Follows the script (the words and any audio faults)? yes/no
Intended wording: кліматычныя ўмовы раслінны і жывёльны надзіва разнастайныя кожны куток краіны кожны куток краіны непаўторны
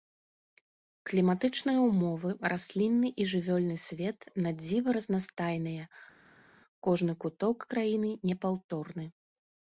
no